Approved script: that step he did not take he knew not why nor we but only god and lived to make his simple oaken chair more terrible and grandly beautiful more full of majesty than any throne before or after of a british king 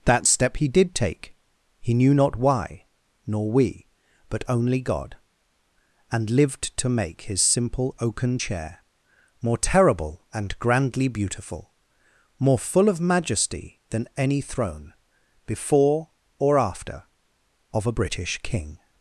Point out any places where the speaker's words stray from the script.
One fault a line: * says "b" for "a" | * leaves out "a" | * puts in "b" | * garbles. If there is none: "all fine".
* leaves out "not"